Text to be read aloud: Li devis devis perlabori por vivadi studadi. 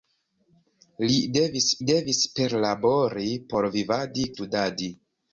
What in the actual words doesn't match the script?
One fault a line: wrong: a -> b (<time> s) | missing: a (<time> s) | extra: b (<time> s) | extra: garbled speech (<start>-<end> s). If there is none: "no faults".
no faults